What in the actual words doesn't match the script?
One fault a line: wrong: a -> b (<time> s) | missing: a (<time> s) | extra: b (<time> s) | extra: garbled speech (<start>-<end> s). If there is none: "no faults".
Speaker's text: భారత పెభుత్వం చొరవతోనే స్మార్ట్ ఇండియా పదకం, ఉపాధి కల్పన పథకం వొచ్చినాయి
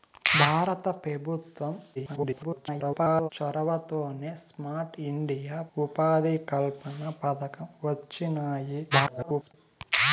extra: garbled speech (2.0-3.3 s)
missing: పదకం (5.6 s)
extra: garbled speech (8.9-9.5 s)